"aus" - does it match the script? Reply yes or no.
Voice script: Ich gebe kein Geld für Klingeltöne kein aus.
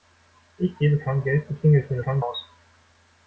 yes